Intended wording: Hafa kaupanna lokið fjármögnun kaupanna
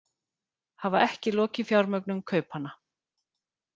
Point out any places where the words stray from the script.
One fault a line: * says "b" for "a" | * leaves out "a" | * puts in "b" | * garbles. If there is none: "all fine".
* says "ekki" for "kaupanna"